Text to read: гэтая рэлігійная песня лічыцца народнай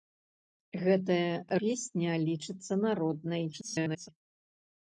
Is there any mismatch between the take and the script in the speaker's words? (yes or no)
yes